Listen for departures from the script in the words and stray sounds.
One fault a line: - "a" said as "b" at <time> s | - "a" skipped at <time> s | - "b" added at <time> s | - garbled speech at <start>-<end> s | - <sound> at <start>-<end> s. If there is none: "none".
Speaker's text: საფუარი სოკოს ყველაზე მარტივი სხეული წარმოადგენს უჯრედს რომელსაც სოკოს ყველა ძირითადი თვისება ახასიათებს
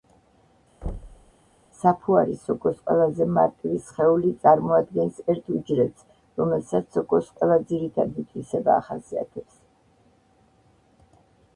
- thud at 0.8-1.3 s
- "ერთ" added at 5.3 s